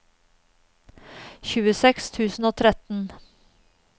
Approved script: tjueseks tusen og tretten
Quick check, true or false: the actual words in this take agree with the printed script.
true